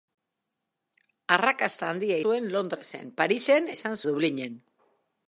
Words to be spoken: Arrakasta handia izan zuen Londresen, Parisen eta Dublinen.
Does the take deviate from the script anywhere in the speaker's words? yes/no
yes